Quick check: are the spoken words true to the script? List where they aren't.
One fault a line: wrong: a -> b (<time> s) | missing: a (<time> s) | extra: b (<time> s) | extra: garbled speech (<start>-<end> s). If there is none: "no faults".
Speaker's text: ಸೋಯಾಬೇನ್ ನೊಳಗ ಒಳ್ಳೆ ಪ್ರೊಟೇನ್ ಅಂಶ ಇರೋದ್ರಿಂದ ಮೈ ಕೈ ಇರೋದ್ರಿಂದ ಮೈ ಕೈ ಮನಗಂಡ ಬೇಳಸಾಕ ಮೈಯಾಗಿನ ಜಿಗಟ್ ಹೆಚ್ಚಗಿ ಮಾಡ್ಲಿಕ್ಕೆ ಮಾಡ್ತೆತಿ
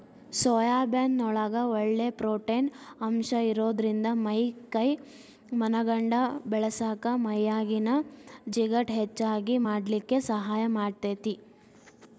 missing: ಇರೋದ್ರಿಂದ ಮೈ ಕೈ (4.9 s)
extra: ಸಹಾಯ (10.3 s)